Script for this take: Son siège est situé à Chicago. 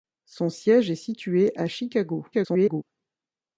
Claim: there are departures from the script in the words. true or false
true